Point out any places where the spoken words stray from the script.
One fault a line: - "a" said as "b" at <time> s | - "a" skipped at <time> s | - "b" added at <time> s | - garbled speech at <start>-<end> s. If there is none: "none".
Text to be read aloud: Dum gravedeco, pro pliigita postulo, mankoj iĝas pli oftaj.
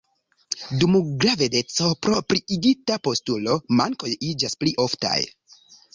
none